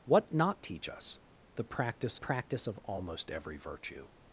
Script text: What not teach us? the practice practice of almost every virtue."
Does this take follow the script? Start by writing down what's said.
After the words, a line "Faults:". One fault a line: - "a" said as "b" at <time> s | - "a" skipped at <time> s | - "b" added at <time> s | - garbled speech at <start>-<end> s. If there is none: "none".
What not teach us? the practice practice of almost every virtue."
Faults:
none